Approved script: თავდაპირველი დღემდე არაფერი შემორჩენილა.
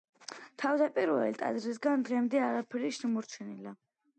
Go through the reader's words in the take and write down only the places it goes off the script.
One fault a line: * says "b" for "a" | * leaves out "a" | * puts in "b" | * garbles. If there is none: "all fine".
* puts in "ტაძრისგან"